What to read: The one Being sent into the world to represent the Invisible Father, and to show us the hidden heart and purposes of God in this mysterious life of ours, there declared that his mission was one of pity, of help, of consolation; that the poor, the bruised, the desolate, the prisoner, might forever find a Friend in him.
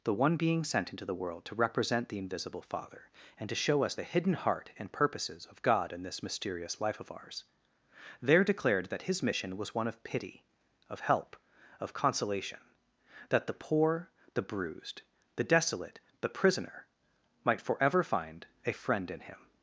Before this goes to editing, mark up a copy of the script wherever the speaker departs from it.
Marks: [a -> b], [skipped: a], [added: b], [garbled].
The one Being sent into the world to represent the Invisible Father, and to show us the hidden heart and purposes of God in this mysterious life of ours, there declared that his mission was one of pity, of help, of consolation; that the poor, the bruised, the desolate, the prisoner, might forever find a Friend in him.